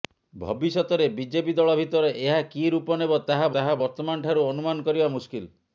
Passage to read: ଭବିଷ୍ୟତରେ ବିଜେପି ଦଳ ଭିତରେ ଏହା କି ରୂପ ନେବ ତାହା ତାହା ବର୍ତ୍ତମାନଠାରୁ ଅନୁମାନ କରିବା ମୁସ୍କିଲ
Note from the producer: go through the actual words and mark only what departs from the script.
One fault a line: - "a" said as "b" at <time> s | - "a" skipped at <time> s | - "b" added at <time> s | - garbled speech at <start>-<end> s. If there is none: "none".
none